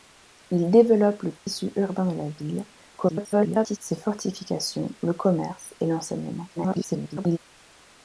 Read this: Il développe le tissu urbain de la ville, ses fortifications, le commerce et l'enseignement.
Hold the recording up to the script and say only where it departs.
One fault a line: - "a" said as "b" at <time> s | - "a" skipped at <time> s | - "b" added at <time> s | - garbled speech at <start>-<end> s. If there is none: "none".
- garbled speech at 3.0-3.8 s
- garbled speech at 6.6-7.4 s